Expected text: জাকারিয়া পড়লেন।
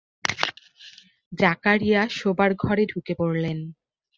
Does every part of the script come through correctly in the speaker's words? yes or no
no